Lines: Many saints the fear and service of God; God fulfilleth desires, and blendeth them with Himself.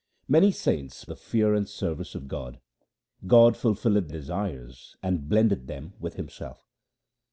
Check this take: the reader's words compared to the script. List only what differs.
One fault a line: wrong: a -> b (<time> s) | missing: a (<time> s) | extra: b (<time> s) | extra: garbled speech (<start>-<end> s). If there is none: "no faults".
no faults